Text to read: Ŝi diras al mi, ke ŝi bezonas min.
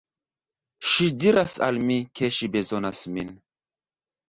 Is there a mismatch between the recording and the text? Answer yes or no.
no